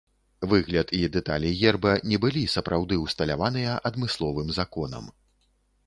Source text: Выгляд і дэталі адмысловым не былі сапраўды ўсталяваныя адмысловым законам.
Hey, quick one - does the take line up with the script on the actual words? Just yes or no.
no